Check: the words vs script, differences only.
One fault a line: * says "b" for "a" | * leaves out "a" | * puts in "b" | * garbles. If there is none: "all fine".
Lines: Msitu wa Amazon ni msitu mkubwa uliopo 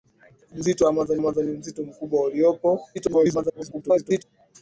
* puts in "Amazon"
* garbles